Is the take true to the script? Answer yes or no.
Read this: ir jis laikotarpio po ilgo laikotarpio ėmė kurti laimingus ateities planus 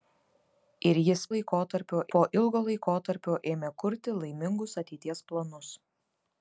yes